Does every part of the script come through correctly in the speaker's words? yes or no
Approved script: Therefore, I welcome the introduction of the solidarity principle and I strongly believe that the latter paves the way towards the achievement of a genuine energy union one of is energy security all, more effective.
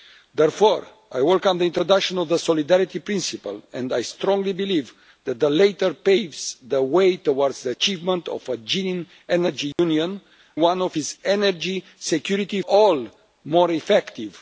yes